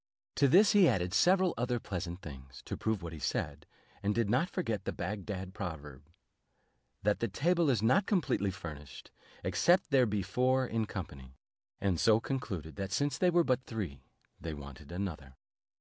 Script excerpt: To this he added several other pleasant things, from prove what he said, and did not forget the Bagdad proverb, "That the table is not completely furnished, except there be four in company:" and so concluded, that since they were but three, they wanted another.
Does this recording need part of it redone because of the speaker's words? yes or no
yes